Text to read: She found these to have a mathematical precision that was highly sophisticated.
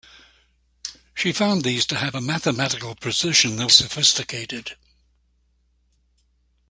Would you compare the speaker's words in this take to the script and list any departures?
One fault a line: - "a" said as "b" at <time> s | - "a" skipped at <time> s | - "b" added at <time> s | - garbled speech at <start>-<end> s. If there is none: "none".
- "was highly" skipped at 3.7 s